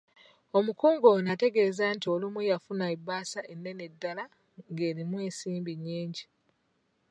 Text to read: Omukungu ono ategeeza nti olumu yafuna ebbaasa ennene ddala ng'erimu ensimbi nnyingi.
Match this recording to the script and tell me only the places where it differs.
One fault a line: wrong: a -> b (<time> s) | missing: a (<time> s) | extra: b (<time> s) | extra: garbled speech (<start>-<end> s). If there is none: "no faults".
no faults